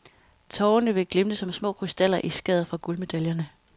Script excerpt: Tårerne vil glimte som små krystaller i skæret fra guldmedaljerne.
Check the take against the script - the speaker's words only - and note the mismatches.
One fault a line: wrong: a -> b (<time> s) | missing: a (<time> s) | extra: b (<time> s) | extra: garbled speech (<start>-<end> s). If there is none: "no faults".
no faults